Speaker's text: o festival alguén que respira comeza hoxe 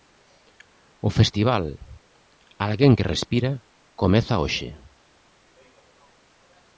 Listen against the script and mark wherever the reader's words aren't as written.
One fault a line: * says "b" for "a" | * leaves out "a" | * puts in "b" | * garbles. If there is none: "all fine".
all fine